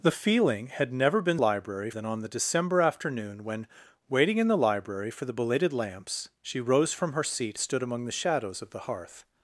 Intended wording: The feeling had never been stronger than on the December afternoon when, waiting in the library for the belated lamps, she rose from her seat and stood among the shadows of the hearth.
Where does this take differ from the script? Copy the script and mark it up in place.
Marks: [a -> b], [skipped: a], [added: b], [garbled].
The feeling had never been [stronger -> library] than on the December afternoon when, waiting in the library for the belated lamps, she rose from her seat [skipped: and] stood among the shadows of the hearth.